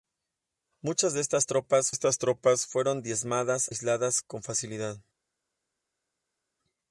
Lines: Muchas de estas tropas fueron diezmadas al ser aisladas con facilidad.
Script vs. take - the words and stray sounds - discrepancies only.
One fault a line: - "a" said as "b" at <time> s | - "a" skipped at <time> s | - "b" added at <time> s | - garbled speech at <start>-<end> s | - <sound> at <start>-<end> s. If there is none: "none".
- "estas tropas" added at 1.9 s
- "al ser" skipped at 3.7 s